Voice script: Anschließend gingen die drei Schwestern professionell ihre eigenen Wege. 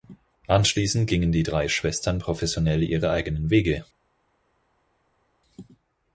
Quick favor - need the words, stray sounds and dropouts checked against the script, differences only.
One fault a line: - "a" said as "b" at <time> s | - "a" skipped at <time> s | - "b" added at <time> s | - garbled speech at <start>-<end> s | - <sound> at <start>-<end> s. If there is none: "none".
none